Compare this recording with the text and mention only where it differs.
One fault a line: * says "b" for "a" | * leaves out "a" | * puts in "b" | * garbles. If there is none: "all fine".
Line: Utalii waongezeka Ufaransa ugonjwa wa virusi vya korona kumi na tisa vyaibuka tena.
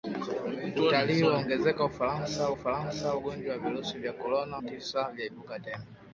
* puts in "Ufaransa"
* leaves out "kumi na"